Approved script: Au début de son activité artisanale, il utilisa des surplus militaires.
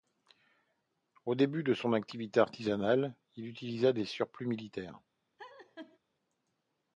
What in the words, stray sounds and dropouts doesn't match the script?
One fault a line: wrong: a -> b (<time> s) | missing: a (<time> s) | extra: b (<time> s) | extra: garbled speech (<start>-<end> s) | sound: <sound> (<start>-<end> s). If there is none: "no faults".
sound: laugh (5.4-6.0 s)